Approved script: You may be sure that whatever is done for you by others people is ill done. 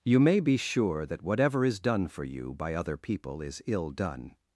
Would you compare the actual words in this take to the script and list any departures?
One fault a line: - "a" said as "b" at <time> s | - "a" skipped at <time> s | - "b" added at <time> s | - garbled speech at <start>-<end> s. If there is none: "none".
- "others" said as "other" at 2.7 s